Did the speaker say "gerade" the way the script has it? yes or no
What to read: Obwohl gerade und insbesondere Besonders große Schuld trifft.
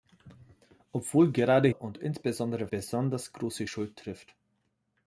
yes